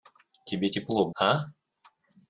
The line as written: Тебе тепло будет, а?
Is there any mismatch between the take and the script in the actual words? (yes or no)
yes